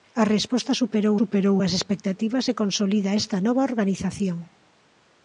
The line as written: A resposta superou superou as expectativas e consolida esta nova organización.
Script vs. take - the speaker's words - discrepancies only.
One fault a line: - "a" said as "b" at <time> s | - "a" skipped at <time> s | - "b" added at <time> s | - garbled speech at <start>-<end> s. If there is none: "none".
none